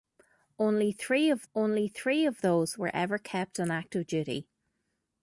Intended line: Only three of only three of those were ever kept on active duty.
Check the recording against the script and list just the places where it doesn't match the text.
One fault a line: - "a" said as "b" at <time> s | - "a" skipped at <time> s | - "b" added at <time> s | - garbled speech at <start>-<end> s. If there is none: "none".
none